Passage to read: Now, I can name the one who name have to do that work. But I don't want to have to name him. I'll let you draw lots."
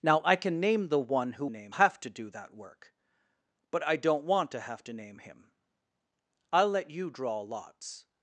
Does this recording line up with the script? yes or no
yes